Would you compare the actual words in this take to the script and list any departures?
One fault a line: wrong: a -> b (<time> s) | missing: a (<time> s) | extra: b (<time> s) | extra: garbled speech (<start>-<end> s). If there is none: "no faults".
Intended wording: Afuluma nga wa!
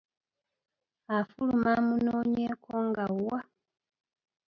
extra: amunoonyeeko (1.8 s)